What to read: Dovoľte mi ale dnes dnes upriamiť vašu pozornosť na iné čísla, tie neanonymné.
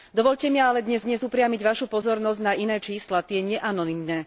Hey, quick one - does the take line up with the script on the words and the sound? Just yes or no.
yes